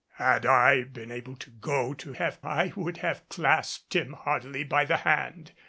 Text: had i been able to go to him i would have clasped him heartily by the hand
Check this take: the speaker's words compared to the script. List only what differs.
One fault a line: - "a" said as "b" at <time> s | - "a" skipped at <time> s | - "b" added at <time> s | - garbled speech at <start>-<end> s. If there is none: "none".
- "him" said as "have" at 2.1 s